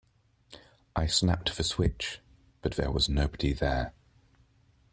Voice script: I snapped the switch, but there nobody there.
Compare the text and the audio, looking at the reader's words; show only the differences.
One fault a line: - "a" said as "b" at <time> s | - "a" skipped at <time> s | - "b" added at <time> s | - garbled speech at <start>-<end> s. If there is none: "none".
- "was" added at 2.9 s